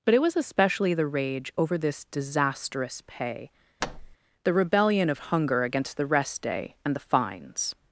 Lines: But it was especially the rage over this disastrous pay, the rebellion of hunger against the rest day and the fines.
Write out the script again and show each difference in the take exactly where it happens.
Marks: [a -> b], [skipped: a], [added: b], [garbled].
But it was especially the rage over this disastrous pay, the rebellion of hunger against the rest day and the fines.